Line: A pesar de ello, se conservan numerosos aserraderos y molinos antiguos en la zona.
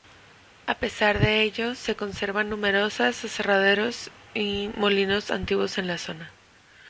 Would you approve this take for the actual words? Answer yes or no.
yes